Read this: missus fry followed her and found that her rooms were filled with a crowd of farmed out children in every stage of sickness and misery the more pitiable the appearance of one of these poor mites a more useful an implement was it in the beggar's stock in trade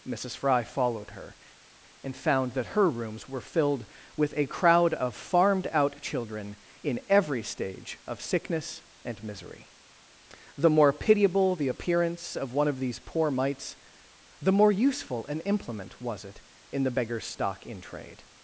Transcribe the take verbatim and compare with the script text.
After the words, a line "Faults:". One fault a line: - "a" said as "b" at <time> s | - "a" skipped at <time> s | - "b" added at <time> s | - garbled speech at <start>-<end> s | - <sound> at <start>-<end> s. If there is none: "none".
missus fry followed her and found that her rooms were filled with a crowd of farmed out children in every stage of sickness and misery the more pitiable the appearance of one of these poor mites the more useful an implement was it in the beggar's stock in trade
Faults:
- "a" said as "the" at 14.4 s